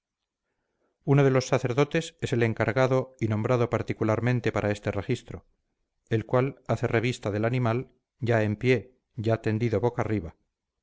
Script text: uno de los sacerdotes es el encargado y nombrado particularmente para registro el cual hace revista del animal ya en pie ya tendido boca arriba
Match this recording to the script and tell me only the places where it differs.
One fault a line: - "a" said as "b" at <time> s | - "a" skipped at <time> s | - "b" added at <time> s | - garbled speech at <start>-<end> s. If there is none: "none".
- "este" added at 4.7 s